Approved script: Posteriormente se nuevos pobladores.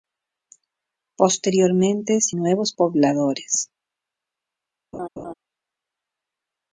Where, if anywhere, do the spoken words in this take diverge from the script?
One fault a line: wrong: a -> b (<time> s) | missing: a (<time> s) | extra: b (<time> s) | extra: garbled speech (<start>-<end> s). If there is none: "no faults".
no faults